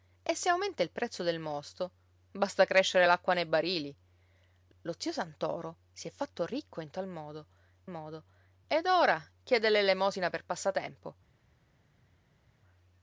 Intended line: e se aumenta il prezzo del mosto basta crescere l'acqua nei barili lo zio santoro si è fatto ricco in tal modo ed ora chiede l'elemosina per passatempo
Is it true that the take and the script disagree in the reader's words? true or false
true